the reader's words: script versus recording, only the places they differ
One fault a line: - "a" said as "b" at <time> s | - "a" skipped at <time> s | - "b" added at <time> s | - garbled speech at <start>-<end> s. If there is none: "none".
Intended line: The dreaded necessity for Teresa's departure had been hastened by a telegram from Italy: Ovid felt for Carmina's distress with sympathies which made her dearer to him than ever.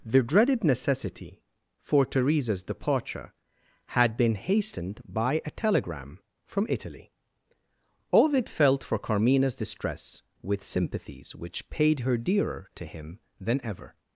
- "made" said as "paid" at 11.7 s